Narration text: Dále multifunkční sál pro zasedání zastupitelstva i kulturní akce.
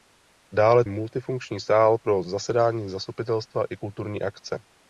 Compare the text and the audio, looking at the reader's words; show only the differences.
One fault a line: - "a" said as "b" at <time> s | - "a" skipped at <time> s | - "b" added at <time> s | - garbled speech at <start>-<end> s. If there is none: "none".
none